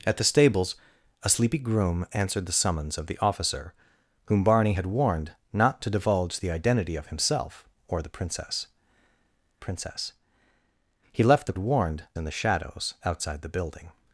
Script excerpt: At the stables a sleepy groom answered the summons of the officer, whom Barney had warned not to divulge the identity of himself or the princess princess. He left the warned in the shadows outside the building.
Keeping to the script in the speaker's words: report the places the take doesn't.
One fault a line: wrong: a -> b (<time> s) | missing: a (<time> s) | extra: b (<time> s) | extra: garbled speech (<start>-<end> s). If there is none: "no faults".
no faults